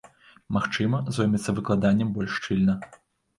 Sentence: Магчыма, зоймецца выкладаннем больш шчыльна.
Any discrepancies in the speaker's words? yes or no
no